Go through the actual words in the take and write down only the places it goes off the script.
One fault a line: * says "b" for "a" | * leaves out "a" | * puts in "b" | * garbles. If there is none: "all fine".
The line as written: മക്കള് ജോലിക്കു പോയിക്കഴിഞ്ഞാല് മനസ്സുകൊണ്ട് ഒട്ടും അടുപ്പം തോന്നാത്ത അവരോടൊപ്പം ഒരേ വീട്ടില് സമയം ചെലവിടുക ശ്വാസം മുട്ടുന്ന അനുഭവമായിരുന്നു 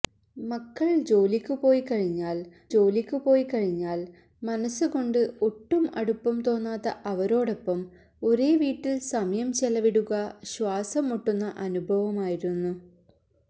* puts in "ജോലിക്കു പോയിക്കഴിഞ്ഞാല്"